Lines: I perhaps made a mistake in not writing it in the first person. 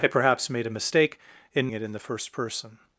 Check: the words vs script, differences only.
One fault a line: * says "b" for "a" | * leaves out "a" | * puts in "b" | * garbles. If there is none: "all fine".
* leaves out "not writing"